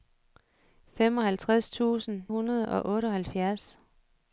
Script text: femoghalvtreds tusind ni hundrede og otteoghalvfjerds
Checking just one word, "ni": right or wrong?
wrong